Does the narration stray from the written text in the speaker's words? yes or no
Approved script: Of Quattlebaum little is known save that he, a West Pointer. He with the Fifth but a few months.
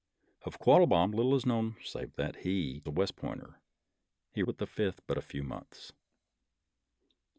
no